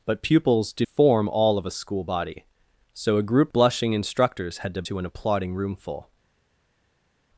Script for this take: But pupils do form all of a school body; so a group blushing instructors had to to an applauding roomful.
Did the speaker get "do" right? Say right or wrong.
right